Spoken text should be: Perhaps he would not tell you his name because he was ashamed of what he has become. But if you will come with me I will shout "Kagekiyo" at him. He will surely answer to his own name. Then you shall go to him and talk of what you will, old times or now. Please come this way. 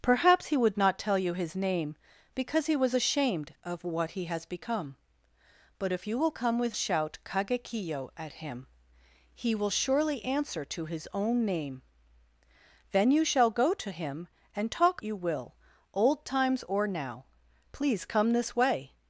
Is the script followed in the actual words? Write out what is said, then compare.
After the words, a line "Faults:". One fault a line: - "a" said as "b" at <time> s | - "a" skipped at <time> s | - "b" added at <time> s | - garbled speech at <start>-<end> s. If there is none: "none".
Perhaps he would not tell you his name because he was ashamed of what he has become. But if you will come with shout "Kagekiyo" at him. He will surely answer to his own name. Then you shall go to him and talk you will, old times or now. Please come this way.
Faults:
- "me I will" skipped at 6.8 s
- "of what" skipped at 15.0 s